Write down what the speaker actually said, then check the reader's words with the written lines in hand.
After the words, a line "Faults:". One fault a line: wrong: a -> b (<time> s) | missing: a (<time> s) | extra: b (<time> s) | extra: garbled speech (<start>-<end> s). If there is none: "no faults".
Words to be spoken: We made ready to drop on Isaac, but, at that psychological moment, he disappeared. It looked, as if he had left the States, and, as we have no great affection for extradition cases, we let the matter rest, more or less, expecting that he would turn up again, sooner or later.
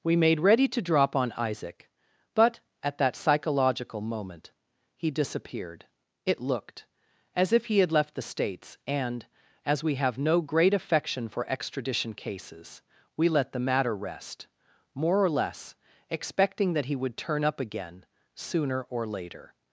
We made ready to drop on Isaac, but, at that psychological moment, he disappeared. It looked, as if he had left the States, and, as we have no great affection for extradition cases, we let the matter rest, more or less, expecting that he would turn up again, sooner or later.
Faults:
no faults